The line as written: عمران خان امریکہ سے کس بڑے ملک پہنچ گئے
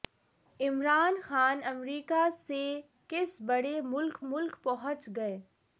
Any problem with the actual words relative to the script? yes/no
yes